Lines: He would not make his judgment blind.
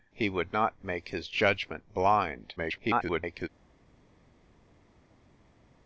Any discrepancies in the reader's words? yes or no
yes